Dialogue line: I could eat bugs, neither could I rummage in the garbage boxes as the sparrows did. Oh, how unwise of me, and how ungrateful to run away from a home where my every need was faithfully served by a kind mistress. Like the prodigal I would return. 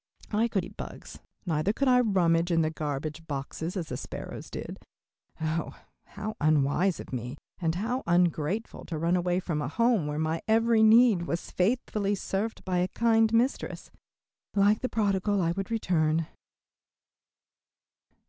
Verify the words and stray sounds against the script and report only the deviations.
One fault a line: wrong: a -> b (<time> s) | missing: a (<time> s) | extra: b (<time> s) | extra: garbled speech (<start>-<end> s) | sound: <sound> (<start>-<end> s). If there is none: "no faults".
no faults